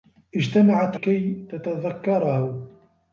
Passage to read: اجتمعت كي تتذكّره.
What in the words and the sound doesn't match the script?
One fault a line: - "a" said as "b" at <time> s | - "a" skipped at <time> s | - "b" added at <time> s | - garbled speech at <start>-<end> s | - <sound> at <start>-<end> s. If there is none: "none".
none